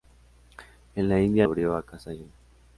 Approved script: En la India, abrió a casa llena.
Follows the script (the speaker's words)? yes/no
yes